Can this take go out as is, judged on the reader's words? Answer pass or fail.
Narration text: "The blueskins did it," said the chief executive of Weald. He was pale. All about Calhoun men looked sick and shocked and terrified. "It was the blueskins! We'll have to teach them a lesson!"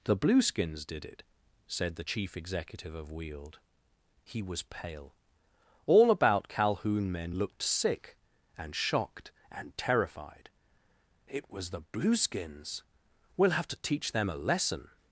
pass